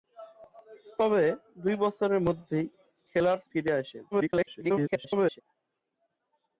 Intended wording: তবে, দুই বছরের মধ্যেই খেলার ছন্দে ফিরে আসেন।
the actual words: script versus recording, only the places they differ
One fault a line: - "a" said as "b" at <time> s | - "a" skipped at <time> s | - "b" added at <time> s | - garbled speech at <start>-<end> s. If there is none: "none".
- "ছন্দে" skipped at 3.4 s
- garbled speech at 4.1-5.4 s